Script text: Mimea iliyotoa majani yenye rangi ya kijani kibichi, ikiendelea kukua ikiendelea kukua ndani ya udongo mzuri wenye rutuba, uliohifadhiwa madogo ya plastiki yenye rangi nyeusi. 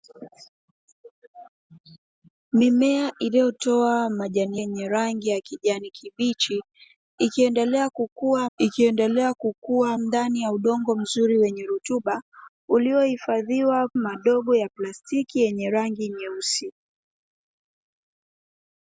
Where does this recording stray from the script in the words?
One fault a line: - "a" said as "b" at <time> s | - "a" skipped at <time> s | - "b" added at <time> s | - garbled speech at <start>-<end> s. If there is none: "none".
none